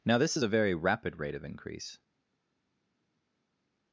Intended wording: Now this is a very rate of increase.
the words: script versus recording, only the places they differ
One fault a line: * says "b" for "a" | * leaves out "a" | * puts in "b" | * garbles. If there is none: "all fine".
* puts in "rapid"